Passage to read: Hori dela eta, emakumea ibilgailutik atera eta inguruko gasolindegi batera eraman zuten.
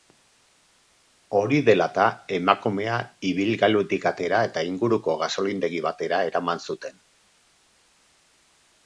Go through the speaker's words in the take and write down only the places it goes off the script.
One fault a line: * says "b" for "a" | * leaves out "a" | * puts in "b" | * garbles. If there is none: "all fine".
all fine